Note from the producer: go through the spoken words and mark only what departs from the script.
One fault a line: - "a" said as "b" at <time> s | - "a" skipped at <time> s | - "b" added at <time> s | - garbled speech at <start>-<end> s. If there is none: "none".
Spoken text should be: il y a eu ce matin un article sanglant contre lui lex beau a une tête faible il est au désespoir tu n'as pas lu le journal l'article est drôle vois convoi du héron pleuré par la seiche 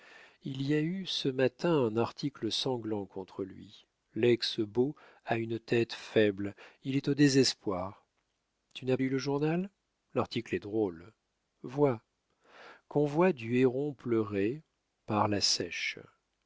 - "pas" skipped at 9.0 s